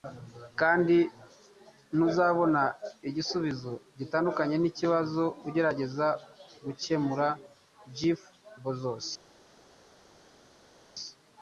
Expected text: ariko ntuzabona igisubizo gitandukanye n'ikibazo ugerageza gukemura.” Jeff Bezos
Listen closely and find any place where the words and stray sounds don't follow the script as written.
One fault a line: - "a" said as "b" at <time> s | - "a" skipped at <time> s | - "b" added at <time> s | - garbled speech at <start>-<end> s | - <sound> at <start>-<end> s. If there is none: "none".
- "ariko" said as "kandi" at 0.6 s